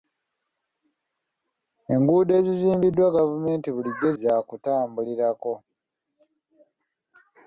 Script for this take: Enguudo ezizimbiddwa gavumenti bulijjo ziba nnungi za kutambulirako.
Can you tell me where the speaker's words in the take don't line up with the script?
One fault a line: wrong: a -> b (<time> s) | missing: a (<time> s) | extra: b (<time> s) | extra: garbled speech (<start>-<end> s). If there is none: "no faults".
missing: ziba nnungi (4.1 s)